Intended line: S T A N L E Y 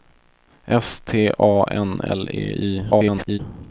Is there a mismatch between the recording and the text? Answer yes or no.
yes